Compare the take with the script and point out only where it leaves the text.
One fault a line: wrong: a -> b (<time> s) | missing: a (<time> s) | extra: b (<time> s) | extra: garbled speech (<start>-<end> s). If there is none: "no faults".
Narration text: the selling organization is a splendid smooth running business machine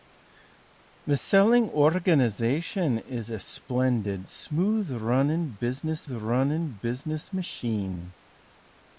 extra: running business (6.1 s)